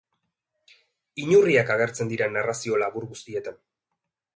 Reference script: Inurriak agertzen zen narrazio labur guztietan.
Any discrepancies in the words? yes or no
yes